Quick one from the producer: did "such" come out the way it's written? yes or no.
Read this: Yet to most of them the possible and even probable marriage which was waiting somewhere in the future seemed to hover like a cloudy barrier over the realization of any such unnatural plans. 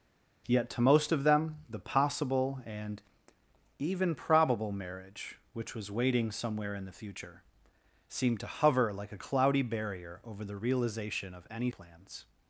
no